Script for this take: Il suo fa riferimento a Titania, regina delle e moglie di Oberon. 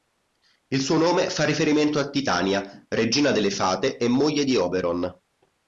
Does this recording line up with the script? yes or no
no